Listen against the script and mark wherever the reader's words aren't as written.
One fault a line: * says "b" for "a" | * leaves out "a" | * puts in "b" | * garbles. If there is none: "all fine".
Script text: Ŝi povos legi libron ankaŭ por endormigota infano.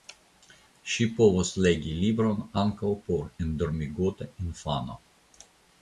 all fine